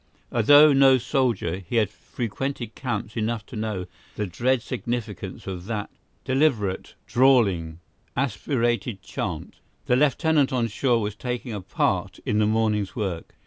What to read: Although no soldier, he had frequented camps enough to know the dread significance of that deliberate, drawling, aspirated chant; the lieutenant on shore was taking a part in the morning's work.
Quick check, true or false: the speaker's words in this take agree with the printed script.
true